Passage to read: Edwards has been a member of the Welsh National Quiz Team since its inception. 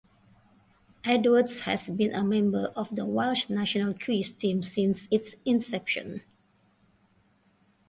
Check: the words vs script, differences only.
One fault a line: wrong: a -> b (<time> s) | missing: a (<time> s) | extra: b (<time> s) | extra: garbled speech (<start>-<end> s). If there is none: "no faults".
no faults